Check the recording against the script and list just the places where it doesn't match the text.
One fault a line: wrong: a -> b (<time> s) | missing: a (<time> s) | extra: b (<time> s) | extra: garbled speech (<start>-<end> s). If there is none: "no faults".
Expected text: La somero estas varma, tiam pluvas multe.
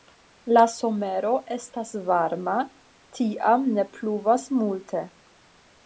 extra: ne (3.8 s)